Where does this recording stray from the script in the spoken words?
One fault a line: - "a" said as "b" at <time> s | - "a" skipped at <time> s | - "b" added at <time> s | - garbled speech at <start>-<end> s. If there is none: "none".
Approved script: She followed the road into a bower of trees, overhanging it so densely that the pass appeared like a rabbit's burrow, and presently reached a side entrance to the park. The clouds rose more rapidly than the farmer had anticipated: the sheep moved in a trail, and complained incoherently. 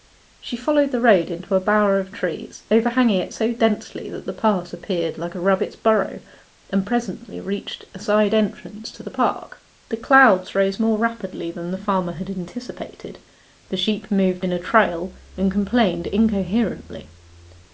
none